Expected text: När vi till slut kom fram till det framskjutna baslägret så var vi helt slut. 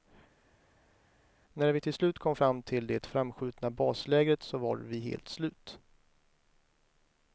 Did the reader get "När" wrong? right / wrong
right